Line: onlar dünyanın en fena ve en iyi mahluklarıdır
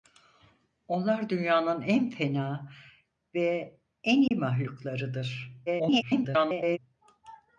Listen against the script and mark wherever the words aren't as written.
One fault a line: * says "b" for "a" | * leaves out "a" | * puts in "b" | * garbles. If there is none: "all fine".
* garbles